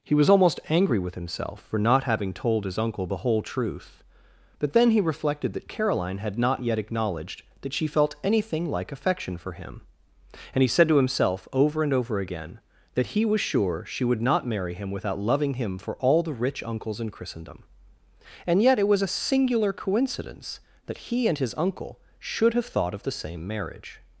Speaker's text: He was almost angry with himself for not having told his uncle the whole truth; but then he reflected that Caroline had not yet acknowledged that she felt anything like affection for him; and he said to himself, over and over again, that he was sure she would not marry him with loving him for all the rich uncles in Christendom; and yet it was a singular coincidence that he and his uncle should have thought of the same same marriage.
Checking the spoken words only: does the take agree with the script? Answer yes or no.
no